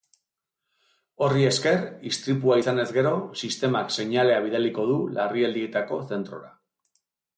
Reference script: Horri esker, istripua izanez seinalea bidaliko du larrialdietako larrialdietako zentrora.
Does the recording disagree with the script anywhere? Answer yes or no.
yes